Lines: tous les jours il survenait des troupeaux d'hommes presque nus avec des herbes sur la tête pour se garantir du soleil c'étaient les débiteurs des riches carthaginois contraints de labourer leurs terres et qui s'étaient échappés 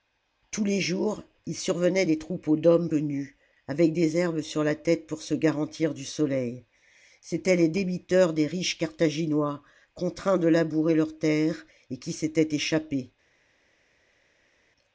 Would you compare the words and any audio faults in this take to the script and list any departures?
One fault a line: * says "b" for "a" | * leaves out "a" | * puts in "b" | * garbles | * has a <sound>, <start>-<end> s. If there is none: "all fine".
* leaves out "presque"